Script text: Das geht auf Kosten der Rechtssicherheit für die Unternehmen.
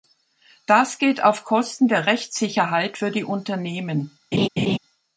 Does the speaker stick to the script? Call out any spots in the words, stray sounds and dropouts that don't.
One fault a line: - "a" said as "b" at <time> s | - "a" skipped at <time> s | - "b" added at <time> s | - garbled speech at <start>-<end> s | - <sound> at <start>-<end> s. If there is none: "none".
- laugh at 4.3-4.8 s